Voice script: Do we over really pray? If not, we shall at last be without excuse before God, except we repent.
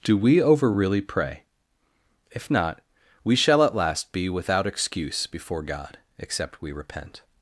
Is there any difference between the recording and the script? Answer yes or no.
no